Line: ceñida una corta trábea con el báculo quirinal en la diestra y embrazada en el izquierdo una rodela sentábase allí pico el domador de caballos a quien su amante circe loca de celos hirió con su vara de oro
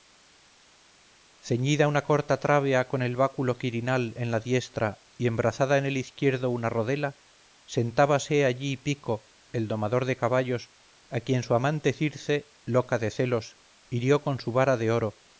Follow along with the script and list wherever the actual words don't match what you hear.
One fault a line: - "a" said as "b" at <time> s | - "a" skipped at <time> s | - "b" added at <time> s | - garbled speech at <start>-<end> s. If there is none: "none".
none